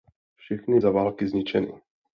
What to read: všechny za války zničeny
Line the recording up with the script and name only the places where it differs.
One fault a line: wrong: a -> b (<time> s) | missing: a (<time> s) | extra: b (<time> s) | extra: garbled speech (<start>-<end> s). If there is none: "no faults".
no faults